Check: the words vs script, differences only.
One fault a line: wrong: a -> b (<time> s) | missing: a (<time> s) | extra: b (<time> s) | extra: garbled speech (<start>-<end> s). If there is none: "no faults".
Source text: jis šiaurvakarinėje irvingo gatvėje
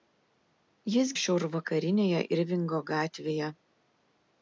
no faults